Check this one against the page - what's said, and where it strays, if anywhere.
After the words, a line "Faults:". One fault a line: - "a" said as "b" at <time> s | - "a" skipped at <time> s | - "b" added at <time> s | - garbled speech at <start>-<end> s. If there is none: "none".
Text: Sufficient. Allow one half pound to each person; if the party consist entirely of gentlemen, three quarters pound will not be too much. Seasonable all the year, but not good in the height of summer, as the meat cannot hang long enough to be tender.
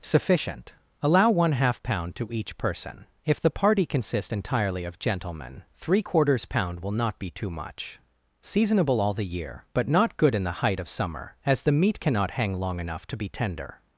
Sufficient. Allow one half pound to each person; if the party consists entirely of gentlemen, three quarters pound will not be too much. Seasonable all the year, but not good in the height of summer, as the meat cannot hang long enough to be tender.
Faults:
- "consist" said as "consists" at 3.9 s